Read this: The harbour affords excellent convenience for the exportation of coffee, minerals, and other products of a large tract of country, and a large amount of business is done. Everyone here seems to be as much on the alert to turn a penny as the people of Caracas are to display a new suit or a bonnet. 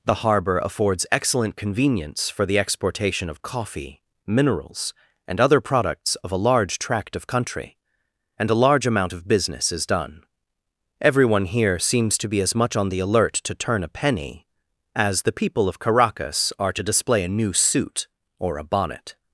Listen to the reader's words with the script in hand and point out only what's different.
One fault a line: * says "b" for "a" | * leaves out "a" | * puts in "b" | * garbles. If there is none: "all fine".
all fine